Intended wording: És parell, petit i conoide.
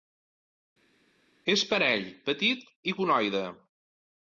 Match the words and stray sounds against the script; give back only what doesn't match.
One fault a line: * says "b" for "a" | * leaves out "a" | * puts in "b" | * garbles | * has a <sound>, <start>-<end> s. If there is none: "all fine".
all fine